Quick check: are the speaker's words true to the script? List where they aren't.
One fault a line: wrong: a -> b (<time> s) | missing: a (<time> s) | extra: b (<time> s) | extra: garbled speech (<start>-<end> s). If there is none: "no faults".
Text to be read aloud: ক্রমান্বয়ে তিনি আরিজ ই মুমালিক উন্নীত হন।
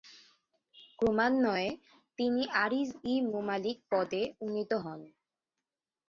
extra: পদে (3.9 s)